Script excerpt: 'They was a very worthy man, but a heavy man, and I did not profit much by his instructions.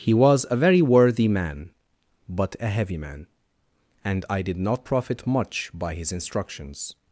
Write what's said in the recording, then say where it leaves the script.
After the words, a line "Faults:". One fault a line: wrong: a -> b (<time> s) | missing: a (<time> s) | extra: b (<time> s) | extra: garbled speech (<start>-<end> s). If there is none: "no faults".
'He was a very worthy man, but a heavy man, and I did not profit much by his instructions.
Faults:
wrong: They -> He (0.0 s)